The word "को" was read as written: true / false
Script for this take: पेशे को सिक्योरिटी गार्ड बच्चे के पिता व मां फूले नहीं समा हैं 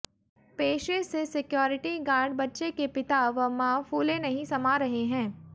false